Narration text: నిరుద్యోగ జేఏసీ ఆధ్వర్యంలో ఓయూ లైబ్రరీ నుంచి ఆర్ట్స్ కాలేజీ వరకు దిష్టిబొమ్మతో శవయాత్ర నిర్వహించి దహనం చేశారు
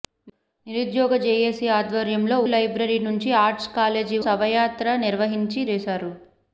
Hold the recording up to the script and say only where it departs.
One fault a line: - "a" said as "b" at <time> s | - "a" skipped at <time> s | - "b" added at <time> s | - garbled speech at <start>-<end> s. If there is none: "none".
- "ఓయూ" skipped at 2.4 s
- "వరకు దిష్టిబొమ్మతో" skipped at 4.2 s
- "దహనం" skipped at 5.6 s